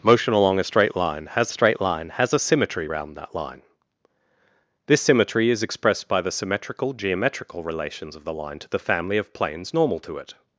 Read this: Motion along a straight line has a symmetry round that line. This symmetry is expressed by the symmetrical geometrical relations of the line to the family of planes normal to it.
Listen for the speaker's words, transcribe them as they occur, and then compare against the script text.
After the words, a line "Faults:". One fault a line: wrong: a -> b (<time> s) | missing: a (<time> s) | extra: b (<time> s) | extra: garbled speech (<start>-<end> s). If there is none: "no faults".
Motion along a straight line has straight line has a symmetry round that line. This symmetry is expressed by the symmetrical geometrical relations of the line to the family of planes normal to it.
Faults:
extra: straight line has (1.5 s)